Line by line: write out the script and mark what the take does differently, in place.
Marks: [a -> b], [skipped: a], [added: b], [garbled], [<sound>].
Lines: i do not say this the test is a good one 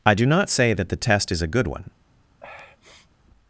i do not say [this -> that] the test is a good one [sniff]